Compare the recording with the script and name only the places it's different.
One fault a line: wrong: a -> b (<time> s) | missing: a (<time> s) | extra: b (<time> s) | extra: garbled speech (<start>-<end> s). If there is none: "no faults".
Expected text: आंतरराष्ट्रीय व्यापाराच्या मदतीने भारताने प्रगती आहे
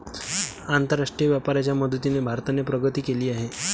extra: केली (3.0 s)